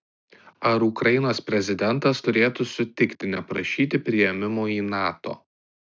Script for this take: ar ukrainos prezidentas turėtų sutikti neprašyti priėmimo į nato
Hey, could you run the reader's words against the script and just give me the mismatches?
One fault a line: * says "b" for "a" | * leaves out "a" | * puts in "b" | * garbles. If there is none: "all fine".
all fine